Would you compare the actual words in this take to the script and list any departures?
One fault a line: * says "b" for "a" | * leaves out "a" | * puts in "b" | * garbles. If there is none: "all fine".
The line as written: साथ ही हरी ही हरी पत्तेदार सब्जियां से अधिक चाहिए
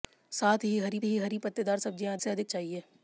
all fine